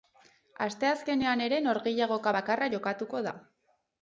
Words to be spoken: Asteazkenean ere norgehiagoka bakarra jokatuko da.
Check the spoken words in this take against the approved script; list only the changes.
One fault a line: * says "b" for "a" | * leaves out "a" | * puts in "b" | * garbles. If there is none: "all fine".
all fine